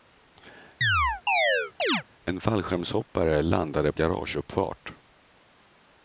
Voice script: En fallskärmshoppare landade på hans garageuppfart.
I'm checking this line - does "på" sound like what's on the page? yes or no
no